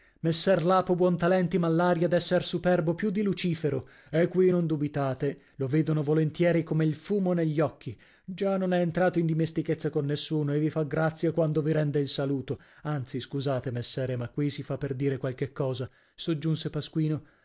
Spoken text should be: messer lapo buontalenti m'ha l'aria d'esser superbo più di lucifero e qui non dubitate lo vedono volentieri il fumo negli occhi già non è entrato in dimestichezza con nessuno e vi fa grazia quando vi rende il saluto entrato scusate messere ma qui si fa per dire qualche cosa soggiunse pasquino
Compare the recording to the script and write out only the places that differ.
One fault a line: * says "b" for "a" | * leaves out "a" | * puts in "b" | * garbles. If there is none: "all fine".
* puts in "come"
* says "anzi" for "entrato"